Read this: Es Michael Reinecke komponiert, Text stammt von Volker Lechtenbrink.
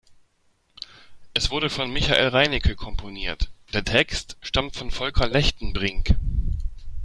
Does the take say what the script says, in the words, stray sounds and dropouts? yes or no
no